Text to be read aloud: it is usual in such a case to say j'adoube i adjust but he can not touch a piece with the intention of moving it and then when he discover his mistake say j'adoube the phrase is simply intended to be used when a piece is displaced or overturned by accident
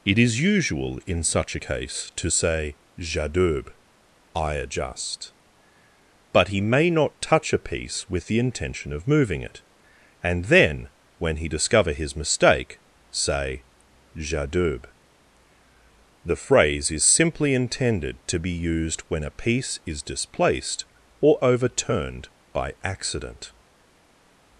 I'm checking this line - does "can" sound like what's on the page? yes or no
no